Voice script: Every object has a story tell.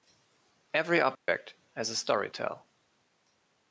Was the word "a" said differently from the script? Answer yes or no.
no